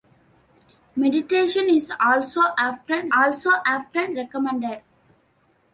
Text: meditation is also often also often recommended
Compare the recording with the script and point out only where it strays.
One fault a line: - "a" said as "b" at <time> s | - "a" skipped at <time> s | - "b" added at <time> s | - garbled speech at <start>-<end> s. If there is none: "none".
none